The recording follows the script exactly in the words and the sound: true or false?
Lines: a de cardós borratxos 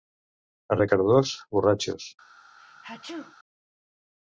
false